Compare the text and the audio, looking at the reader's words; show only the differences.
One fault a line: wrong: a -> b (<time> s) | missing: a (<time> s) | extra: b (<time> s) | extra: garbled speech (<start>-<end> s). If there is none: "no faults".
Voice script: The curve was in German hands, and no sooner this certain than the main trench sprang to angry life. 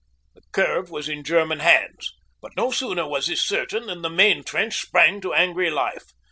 wrong: and -> but (2.4 s)
extra: was (3.1 s)